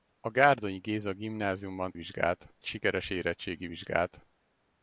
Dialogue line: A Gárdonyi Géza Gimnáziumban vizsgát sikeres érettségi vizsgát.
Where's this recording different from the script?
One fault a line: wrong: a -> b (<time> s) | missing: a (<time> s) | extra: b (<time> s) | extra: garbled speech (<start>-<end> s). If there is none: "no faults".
no faults